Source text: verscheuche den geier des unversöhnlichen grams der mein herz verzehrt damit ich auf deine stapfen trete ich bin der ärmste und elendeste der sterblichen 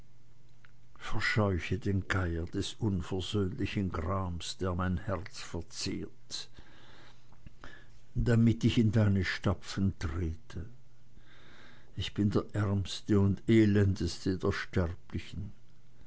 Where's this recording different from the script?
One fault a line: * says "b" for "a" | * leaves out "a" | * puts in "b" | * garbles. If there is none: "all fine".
* says "in" for "auf"